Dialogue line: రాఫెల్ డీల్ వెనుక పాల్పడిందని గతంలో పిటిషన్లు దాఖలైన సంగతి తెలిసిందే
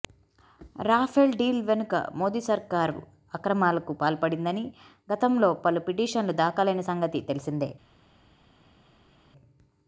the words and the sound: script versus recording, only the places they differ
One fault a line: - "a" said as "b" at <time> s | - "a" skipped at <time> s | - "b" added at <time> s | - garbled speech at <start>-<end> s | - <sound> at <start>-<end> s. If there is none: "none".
- "మోదీ సర్కారు అక్రమాలకు" added at 2.1 s
- "పలు" added at 5.6 s